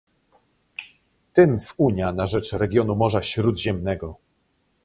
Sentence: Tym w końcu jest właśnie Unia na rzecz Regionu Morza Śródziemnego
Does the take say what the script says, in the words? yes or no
no